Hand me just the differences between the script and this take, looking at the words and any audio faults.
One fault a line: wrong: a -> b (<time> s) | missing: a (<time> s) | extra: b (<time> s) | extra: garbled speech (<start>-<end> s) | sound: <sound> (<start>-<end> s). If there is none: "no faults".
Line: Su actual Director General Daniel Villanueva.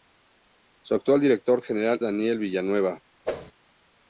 sound: whoosh (3.2-3.5 s)